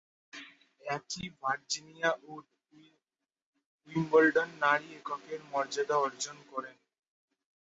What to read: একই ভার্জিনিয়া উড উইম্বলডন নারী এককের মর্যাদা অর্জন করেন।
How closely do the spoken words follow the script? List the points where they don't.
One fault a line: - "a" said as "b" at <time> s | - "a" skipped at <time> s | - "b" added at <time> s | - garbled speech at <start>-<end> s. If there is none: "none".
none